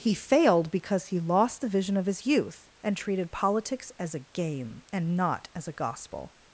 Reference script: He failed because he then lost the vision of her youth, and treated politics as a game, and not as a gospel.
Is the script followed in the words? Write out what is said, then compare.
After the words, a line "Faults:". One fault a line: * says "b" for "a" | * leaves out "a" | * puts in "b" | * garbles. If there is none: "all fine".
He failed because he lost the vision of his youth, and treated politics as a game, and not as a gospel.
Faults:
* leaves out "then"
* says "his" for "her"